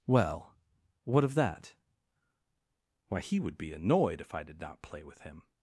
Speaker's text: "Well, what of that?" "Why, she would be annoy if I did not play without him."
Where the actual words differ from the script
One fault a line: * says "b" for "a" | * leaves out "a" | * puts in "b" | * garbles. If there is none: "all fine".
* says "he" for "she"
* says "annoyed" for "annoy"
* says "with" for "without"